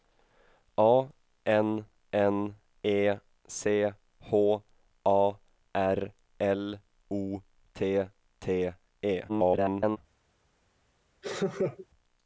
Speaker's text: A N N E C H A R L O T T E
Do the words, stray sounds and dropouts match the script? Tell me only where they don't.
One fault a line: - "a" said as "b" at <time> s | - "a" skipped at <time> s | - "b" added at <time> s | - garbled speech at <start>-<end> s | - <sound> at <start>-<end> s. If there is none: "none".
- garbled speech at 9.3-10.0 s
- laugh at 11.2-11.9 s